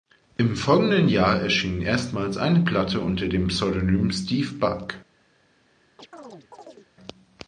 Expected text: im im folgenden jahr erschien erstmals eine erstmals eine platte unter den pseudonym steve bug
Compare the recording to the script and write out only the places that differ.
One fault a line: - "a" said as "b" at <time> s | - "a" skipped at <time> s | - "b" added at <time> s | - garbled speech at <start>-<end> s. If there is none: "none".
- "im" skipped at 0.6 s
- "erstmals eine" skipped at 2.6 s
- "den" said as "dem" at 3.3 s